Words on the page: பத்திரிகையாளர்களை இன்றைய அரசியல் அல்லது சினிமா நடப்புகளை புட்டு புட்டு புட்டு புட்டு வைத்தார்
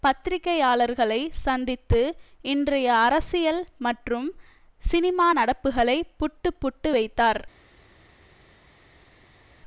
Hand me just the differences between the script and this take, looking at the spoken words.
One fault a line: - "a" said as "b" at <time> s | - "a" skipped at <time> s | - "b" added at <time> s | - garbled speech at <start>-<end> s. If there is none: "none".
- "சந்தித்து" added at 1.4 s
- "அல்லது" said as "மற்றும்" at 3.8 s
- "புட்டு புட்டு" skipped at 6.9 s